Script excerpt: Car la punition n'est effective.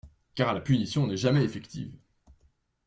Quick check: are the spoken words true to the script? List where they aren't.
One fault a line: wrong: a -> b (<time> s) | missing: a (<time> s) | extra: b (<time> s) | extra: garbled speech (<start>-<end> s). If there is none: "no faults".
extra: jamais (1.2 s)